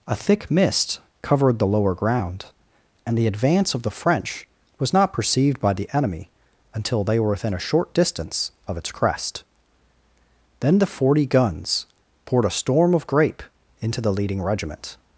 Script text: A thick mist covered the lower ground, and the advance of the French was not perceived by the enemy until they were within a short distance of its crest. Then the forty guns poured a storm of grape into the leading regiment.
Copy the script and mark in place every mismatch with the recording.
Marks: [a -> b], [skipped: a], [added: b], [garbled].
A thick mist covered the lower ground, and the advance of the French was not perceived by the enemy until they were within a short distance of its crest. Then the forty guns poured a storm of grape into the leading regiment.